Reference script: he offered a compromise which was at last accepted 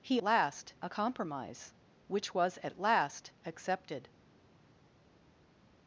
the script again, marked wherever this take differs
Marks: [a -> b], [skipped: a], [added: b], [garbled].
he [offered -> last] a compromise which was at last accepted